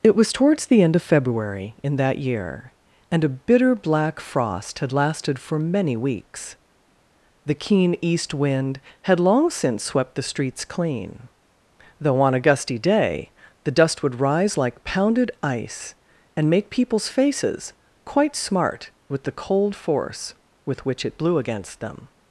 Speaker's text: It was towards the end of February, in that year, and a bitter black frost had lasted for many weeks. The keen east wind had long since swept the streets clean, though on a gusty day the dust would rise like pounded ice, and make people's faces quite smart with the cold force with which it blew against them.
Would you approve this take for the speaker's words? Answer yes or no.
yes